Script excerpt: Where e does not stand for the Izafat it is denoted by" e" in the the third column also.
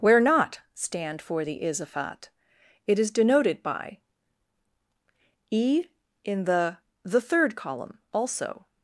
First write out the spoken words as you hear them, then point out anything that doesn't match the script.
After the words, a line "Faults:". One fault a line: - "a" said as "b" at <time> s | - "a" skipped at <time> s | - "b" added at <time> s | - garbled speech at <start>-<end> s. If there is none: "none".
Where not stand for the Izafat it is denoted by" e" in the the third column also.
Faults:
- "e does" skipped at 0.2 s